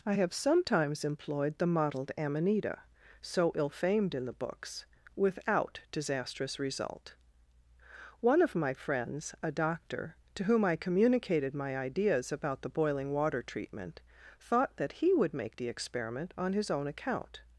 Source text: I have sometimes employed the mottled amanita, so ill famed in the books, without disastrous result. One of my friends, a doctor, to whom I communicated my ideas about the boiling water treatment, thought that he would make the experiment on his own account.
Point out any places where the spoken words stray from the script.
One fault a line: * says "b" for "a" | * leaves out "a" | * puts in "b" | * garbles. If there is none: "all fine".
all fine